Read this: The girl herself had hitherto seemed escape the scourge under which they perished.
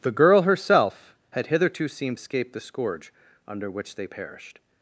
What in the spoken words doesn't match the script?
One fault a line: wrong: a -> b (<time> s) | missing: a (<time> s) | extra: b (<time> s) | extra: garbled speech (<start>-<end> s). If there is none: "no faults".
no faults